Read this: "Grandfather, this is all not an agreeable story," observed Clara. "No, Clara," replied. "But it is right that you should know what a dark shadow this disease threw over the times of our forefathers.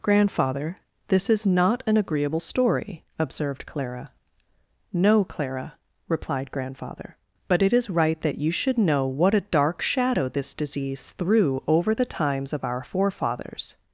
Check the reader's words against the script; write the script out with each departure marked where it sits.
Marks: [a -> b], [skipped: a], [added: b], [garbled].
"Grandfather, this is [skipped: all] not an agreeable story," observed Clara. "No, Clara," replied. [added: Grandfather] "But it is right that you should know what a dark shadow this disease threw over the times of our forefathers.